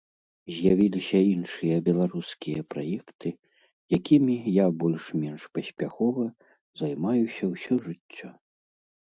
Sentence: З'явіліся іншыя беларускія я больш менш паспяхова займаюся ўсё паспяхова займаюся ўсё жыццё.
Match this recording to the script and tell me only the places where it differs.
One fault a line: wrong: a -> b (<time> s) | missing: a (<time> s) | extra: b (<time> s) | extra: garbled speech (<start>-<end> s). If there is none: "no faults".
extra: праекты якімі (2.7 s)
missing: паспяхова займаюся ўсё (7.7 s)